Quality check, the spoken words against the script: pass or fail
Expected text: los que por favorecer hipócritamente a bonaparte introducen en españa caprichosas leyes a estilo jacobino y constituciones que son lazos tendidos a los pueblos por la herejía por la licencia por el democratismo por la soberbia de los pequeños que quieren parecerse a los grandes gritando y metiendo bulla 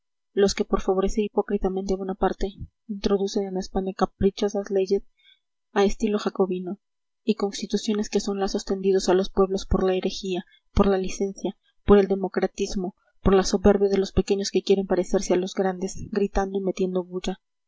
pass